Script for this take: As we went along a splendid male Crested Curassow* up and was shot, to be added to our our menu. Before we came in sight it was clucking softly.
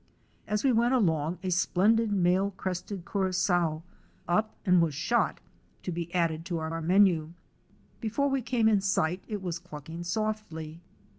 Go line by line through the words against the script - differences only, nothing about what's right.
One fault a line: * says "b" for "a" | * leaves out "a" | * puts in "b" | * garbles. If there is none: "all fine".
all fine